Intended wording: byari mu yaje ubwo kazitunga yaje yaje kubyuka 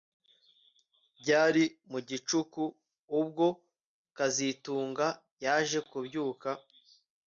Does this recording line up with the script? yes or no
no